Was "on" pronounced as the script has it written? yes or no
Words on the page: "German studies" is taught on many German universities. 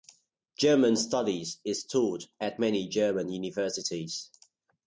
no